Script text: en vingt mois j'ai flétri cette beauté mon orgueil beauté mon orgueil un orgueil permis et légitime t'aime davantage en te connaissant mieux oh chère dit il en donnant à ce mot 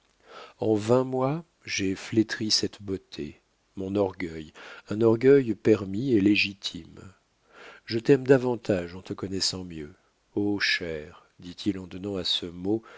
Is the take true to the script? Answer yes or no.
no